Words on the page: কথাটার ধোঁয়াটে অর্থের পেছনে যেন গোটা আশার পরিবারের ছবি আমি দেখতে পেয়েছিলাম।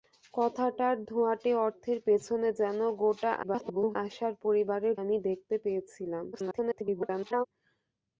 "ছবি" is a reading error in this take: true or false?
true